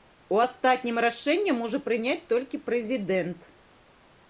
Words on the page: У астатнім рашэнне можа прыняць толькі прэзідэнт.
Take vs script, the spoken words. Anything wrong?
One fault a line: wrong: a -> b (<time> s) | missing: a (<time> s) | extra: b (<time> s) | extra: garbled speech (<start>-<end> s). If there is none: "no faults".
no faults